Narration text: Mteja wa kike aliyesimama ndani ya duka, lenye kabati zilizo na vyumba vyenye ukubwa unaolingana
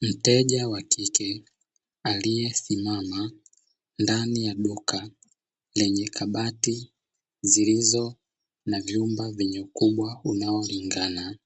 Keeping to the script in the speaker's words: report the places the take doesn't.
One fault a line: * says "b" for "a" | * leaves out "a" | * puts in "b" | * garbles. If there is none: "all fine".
all fine